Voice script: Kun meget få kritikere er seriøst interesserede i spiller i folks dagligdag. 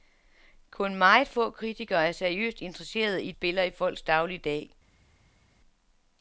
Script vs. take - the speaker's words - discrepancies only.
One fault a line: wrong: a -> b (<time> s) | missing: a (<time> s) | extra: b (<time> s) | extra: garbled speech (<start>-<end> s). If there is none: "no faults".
no faults